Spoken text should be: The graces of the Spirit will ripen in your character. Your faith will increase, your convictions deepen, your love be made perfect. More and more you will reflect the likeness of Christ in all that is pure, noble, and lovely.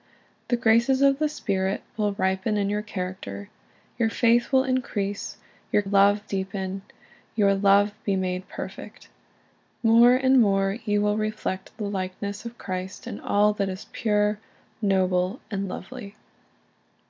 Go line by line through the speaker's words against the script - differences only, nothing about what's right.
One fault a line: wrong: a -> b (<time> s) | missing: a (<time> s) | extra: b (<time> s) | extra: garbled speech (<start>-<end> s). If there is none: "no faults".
wrong: convictions -> love (5.8 s)